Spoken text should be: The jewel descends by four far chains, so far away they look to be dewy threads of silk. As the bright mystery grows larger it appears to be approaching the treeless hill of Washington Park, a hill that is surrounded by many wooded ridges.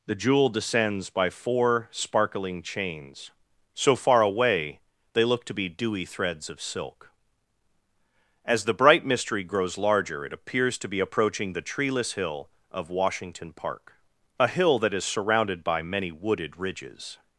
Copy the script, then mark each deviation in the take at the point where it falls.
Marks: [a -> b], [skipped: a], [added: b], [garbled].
The jewel descends by four [far -> sparkling] chains, so far away they look to be dewy threads of silk. As the bright mystery grows larger it appears to be approaching the treeless hill of Washington Park, a hill that is surrounded by many wooded ridges.